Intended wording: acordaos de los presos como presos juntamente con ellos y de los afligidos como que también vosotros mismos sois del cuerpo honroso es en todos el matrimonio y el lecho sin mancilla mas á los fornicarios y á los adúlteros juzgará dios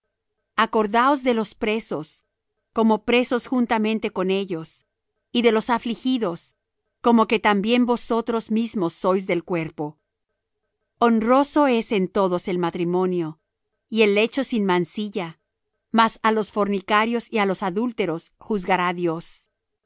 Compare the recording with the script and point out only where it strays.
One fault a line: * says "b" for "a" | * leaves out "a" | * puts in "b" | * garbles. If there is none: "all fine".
all fine